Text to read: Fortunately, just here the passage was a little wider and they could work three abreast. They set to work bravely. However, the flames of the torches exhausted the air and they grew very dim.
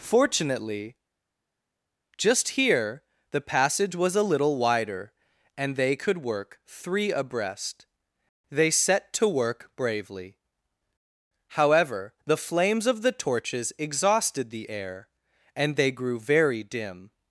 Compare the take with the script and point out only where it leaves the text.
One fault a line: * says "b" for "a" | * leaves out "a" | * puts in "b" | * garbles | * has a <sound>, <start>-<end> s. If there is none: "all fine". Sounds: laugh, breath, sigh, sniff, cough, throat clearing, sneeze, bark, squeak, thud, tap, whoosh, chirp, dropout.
all fine